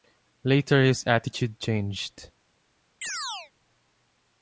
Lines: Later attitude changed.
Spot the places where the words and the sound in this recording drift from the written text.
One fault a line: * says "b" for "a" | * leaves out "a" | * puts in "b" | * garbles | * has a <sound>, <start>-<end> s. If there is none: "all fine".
* puts in "his"
* has a chirp, 3.0-3.5 s